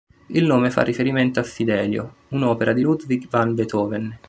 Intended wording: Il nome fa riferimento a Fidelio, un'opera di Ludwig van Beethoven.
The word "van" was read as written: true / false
true